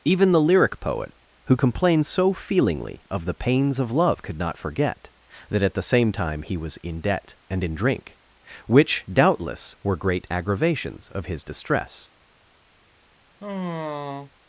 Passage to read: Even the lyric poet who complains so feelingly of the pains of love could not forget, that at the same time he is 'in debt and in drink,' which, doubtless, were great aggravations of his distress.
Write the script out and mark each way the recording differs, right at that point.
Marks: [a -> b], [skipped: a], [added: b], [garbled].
Even the lyric poet who complains so feelingly of the pains of love could not forget, that at the same time he [is -> was] 'in debt and in drink,' which, doubtless, were great aggravations of his distress.